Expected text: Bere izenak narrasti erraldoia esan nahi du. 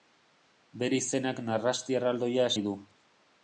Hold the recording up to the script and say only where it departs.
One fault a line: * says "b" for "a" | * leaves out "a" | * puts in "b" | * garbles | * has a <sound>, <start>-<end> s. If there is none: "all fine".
* leaves out "esan"